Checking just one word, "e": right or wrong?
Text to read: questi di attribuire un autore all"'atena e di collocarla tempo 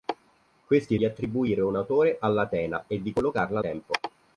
right